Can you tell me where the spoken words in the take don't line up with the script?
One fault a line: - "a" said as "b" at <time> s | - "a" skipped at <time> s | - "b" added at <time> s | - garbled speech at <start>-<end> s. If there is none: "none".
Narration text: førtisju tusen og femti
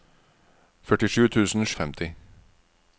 none